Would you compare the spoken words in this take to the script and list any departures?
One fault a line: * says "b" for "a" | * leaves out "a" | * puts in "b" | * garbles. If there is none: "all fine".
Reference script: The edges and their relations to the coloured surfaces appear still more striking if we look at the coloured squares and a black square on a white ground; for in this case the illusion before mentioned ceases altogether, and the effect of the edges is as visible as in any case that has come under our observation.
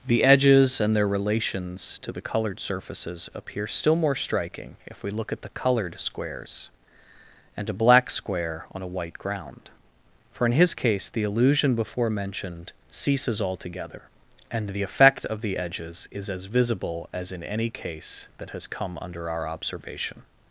* says "his" for "this"